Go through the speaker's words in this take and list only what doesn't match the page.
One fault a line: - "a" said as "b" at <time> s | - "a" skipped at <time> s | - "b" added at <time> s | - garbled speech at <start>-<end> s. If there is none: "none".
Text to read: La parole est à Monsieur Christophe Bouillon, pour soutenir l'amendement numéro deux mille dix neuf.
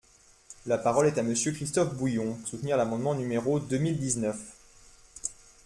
- "pour" skipped at 2.4 s